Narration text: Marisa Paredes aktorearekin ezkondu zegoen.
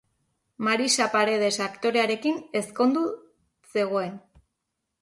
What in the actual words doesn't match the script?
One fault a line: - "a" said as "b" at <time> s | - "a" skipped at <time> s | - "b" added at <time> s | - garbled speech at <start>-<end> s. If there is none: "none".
none